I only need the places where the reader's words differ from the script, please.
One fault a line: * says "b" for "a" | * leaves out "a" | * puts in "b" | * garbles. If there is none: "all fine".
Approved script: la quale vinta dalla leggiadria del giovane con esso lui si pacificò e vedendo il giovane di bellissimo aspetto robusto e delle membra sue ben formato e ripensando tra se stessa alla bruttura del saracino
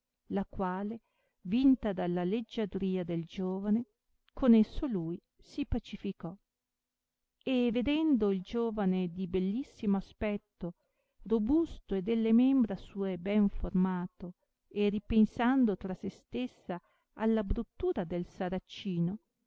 all fine